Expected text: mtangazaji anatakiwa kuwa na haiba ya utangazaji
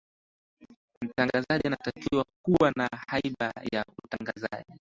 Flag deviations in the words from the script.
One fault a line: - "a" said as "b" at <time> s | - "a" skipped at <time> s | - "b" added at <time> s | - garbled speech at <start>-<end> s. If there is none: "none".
none